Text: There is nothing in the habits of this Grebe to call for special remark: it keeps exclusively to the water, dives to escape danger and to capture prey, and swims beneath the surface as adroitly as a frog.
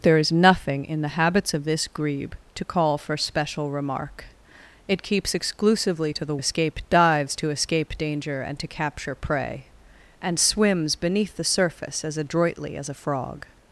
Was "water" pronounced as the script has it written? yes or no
no